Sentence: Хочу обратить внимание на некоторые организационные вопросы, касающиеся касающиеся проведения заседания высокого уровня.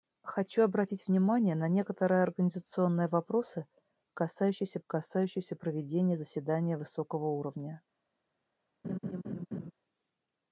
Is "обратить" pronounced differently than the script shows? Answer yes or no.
no